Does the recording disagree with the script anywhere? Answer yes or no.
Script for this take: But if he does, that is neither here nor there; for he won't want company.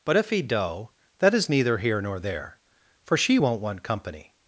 yes